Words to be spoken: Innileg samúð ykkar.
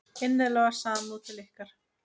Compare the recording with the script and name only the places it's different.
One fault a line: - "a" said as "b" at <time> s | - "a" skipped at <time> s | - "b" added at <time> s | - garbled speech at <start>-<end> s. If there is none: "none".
- "til" added at 1.3 s